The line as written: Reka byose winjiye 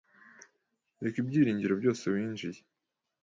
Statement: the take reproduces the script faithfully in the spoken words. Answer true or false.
false